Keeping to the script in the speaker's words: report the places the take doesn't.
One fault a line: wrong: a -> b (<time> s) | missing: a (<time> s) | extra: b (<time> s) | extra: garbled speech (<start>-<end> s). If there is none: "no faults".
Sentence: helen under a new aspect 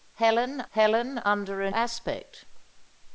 extra: helen (0.7 s)
missing: new (1.7 s)